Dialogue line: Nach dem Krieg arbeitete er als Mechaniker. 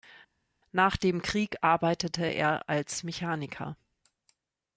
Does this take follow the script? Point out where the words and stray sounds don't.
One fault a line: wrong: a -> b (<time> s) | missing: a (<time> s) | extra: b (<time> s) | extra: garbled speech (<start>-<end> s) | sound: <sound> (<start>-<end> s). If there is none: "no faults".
no faults